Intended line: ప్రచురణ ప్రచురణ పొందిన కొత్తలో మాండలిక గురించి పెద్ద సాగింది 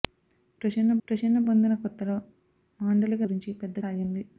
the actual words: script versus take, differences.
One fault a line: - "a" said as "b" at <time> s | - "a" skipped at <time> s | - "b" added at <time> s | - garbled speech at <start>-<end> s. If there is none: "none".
none